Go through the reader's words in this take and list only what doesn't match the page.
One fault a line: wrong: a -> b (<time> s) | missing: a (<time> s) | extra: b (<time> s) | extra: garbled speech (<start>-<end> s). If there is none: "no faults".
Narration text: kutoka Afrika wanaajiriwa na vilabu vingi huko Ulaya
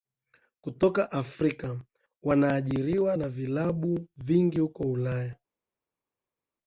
no faults